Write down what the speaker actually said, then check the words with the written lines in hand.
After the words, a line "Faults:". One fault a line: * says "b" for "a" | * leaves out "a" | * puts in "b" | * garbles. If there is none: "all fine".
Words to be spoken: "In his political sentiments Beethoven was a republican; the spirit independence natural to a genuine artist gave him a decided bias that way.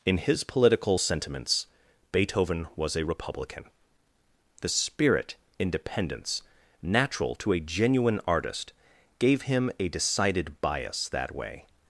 "In his political sentiments Beethoven was a republican; the spirit independence natural to a genuine artist gave him a decided bias that way.
Faults:
all fine